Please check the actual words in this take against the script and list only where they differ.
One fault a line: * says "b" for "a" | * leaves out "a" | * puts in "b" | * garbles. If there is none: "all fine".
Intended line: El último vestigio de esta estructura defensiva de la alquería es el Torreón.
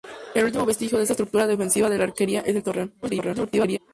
* garbles